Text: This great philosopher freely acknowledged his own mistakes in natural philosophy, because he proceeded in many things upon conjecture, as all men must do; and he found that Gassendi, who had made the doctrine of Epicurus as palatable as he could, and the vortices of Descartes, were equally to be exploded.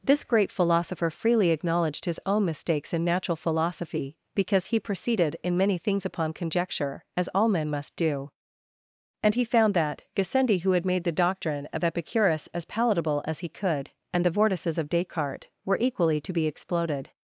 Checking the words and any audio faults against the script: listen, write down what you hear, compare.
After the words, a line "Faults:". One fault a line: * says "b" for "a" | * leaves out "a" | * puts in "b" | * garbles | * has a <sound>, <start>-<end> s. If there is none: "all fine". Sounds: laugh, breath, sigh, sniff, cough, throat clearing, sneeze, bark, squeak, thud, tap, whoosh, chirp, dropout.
This great philosopher freely acknowledged his own mistakes in natural philosophy, because he proceeded in many things upon conjecture, as all men must do; and he found that Gassendi, who had made the doctrine of Epicurus as palatable as he could, and the vortices of Descartes, were equally to be exploded.
Faults:
all fine